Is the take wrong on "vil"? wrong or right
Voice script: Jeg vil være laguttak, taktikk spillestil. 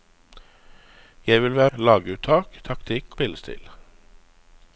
right